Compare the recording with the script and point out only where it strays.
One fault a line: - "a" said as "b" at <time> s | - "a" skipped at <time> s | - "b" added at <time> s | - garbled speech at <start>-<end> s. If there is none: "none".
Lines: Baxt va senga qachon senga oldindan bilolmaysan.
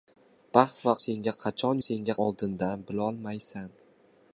none